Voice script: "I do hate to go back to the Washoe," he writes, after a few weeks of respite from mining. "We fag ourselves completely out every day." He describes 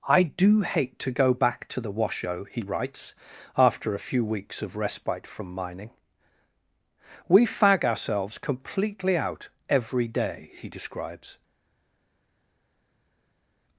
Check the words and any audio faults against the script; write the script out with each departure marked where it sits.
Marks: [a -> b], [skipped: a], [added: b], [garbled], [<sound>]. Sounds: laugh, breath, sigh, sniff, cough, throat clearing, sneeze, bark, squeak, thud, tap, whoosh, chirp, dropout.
"I do hate to go back to the Washoe," he writes, after a few weeks of respite from mining. "We fag ourselves completely out every day." He describes